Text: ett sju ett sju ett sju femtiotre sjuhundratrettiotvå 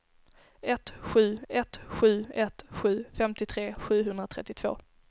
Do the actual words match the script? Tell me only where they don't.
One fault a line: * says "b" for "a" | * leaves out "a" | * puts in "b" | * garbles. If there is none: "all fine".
all fine